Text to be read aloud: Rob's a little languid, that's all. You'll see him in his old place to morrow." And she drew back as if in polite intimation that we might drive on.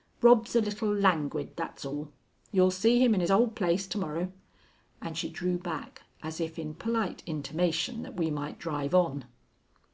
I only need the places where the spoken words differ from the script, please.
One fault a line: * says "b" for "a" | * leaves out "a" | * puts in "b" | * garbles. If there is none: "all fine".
all fine